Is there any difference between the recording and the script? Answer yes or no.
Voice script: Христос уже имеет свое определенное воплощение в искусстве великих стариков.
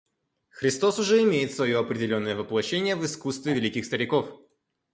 no